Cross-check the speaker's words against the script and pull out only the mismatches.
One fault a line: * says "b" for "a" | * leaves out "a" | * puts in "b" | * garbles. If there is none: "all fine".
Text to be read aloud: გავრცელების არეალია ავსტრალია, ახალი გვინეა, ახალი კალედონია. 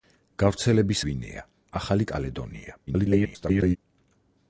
* leaves out "არეალია ავსტრალია ახალი"
* garbles